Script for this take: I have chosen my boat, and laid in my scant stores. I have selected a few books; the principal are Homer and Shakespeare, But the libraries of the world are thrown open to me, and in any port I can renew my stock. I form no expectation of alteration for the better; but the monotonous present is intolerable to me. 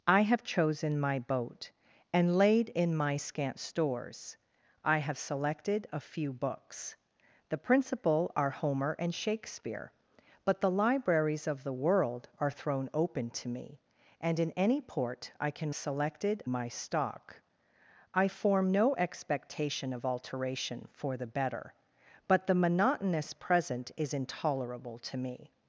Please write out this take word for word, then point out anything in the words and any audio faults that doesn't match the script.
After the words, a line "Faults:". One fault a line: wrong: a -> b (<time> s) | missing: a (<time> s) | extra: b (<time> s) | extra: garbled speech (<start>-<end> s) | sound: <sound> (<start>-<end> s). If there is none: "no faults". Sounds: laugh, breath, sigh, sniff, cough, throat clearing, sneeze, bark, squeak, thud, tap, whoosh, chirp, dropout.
I have chosen my boat, and laid in my scant stores. I have selected a few books; the principal are Homer and Shakespeare, But the libraries of the world are thrown open to me, and in any port I can selected my stock. I form no expectation of alteration for the better; but the monotonous present is intolerable to me.
Faults:
wrong: renew -> selected (15.7 s)